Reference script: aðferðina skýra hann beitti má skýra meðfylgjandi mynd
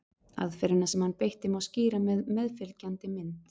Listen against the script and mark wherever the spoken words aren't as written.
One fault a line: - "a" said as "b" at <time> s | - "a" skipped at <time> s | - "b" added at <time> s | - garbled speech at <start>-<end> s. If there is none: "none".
- "skýra" said as "sem" at 0.9 s
- "með" added at 2.1 s